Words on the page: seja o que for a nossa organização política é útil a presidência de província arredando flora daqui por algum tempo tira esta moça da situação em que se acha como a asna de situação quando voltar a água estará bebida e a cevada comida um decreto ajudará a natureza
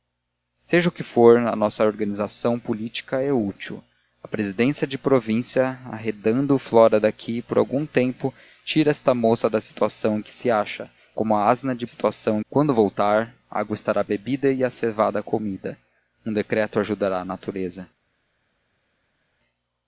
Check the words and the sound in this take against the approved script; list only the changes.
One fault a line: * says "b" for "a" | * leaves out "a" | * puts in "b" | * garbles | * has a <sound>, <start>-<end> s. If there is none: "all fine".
all fine